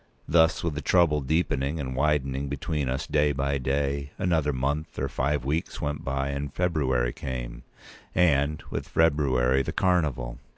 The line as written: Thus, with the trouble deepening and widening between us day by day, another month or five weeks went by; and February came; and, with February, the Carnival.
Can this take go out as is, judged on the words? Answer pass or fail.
pass